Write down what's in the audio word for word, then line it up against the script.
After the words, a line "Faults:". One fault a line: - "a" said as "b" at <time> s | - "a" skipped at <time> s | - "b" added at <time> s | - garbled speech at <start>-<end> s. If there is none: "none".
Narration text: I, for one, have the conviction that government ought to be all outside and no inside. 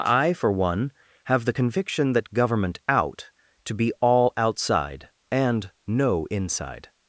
I, for one, have the conviction that government out to be all outside and no inside.
Faults:
- "ought" said as "out" at 2.9 s